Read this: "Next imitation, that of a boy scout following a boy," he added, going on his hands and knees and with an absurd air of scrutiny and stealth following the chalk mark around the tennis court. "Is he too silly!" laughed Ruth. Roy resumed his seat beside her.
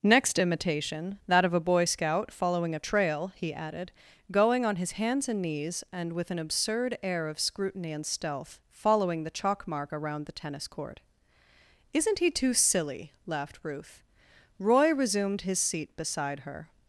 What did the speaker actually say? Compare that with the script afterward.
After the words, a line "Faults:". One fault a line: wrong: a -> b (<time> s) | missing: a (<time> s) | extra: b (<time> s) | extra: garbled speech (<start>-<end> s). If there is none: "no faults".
"Next imitation, that of a boy scout following a trail," he added, going on his hands and knees and with an absurd air of scrutiny and stealth following the chalk mark around the tennis court. "Isn't he too silly!" laughed Ruth. Roy resumed his seat beside her.
Faults:
wrong: boy -> trail (2.8 s)
wrong: Is -> Isn't (11.9 s)